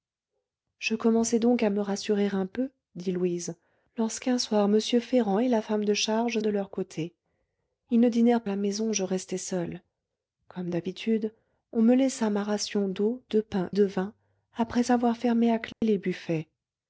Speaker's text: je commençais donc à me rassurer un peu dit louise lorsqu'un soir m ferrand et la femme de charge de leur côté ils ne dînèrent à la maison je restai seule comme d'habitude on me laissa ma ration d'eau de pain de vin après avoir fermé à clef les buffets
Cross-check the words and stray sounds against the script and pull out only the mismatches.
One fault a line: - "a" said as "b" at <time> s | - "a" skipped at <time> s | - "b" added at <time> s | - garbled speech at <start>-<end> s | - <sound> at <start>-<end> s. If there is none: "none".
- dropout at 15.7-15.8 s